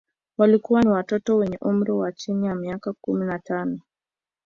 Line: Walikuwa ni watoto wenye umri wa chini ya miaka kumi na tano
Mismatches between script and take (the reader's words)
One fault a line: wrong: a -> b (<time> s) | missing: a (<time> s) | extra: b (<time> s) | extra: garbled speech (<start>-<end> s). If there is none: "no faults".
no faults